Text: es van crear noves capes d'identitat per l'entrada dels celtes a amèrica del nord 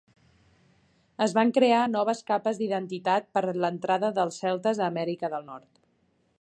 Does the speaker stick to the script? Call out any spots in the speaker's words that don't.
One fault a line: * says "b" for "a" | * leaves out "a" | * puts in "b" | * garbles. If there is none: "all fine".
all fine